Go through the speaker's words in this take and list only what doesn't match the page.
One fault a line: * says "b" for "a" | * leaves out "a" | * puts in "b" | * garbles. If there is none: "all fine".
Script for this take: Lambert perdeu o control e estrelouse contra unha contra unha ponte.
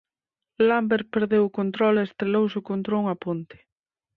* leaves out "contra unha"